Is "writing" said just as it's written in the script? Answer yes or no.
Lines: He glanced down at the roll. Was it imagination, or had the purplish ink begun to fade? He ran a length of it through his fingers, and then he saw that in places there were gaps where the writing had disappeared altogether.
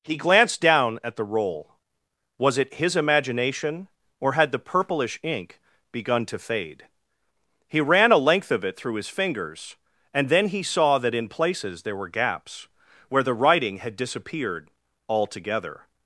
yes